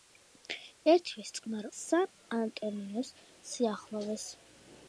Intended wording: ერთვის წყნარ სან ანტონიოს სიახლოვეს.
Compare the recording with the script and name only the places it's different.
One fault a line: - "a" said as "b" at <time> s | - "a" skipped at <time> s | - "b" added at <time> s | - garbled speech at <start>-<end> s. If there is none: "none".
none